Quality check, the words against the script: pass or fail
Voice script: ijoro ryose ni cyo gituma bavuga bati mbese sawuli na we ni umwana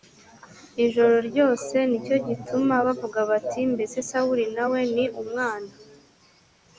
pass